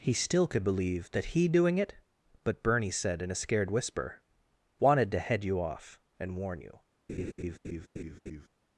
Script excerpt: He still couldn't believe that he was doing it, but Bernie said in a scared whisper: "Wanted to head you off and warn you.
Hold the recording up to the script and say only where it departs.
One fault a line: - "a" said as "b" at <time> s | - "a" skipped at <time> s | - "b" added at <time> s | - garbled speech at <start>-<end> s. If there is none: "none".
- "couldn't" said as "could" at 0.5 s
- "was" skipped at 1.5 s